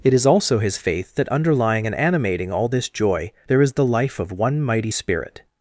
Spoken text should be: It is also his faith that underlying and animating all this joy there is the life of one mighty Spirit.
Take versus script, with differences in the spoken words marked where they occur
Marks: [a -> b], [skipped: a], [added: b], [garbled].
It is also his faith that underlying and animating all this joy there is the life of one mighty Spirit.